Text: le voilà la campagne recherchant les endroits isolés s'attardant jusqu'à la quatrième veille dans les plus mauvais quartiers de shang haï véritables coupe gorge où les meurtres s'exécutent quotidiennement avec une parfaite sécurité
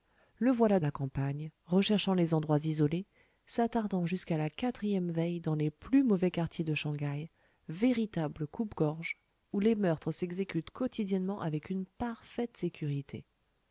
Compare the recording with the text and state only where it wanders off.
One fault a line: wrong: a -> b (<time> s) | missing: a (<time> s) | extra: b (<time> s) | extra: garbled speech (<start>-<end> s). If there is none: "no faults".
no faults